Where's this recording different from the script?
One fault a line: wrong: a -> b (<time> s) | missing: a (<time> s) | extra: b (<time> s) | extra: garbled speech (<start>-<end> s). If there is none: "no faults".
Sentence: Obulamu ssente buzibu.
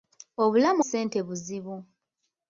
no faults